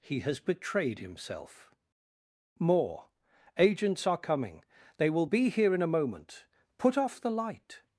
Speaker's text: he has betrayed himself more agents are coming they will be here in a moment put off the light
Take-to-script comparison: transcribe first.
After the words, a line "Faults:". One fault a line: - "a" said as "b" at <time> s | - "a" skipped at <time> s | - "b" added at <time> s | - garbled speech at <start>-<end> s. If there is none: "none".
he has betrayed himself more agents are coming they will be here in a moment put off the light
Faults:
none